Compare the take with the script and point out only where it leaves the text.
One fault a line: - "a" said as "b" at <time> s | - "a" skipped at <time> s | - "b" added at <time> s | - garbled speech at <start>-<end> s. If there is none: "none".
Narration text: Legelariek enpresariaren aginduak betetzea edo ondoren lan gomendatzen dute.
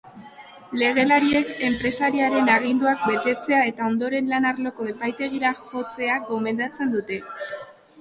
- "edo" said as "eta" at 3.7 s
- "arloko epaitegira jotzea" added at 4.6 s